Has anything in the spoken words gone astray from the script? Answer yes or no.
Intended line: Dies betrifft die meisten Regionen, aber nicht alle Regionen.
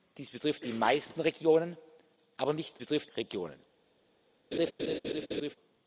yes